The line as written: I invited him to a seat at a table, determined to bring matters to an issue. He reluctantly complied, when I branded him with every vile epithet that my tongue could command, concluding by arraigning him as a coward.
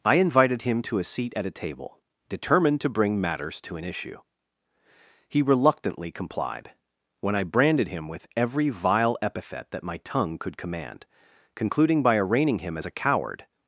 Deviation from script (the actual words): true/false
false